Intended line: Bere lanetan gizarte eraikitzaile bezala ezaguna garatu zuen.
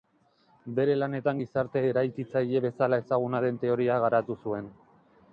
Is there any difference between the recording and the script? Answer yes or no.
yes